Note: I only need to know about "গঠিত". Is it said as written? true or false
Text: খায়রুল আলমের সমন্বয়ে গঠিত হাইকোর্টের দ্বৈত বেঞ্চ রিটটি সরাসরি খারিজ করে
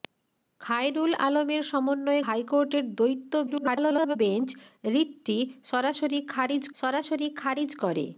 false